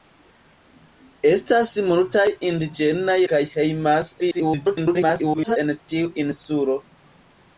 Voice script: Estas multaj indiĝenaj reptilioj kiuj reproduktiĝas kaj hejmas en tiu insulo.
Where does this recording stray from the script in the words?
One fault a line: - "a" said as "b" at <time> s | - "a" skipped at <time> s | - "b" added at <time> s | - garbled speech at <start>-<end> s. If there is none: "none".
- "reptilioj kiuj reproduktiĝas" skipped at 3.2 s
- garbled speech at 4.2-5.6 s